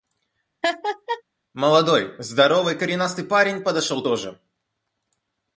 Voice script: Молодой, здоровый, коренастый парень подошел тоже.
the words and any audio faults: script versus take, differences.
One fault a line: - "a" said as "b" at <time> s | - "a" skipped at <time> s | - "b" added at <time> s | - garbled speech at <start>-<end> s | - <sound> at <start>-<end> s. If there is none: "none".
- laugh at 0.6-1.2 s